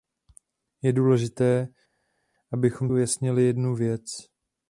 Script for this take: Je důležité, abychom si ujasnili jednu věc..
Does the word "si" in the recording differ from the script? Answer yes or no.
yes